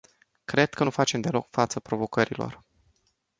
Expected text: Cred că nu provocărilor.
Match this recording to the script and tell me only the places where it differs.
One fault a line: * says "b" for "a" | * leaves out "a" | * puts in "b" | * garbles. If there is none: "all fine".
* puts in "facem deloc față"